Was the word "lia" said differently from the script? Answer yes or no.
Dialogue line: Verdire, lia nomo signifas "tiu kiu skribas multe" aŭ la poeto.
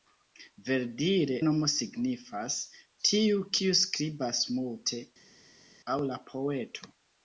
yes